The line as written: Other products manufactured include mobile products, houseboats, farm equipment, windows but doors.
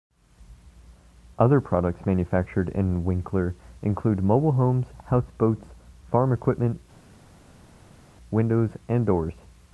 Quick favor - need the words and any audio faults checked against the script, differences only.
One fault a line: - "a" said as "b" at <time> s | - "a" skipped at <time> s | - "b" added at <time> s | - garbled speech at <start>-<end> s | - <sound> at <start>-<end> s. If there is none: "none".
- "in Winkler" added at 2.7 s
- "products" said as "homes" at 4.5 s
- "but" said as "and" at 8.9 s